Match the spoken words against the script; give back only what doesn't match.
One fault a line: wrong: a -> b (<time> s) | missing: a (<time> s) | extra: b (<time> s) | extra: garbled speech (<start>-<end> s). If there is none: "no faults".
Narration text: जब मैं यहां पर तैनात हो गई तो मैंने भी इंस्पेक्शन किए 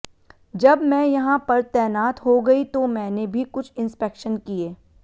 extra: कुछ (3.4 s)